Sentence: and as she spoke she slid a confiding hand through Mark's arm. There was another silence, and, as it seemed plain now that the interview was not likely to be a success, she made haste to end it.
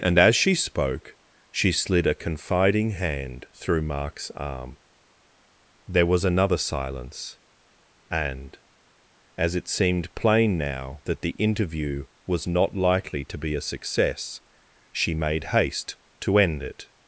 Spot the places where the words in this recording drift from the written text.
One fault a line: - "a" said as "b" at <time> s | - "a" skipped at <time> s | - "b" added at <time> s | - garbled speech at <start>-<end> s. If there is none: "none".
none